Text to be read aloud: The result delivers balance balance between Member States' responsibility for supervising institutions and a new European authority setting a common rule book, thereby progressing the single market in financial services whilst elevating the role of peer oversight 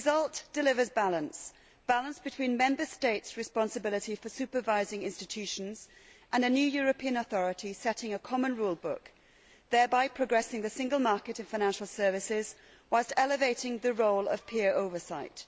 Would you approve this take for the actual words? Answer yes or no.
yes